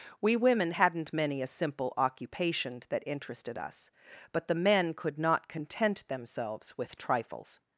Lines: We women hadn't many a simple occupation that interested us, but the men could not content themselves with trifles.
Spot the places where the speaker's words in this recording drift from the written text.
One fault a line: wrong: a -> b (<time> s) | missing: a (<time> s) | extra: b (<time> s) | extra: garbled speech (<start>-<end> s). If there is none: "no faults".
no faults